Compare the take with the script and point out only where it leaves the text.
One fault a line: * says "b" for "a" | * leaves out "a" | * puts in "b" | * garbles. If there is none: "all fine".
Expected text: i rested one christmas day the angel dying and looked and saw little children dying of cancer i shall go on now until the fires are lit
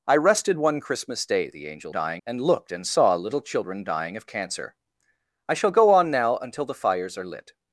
all fine